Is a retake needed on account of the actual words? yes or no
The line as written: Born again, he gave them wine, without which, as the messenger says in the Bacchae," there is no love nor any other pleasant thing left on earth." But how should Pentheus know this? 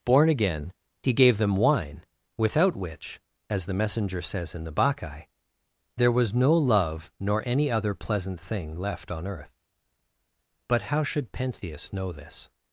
yes